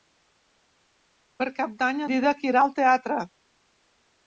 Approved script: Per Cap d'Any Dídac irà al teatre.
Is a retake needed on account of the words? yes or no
no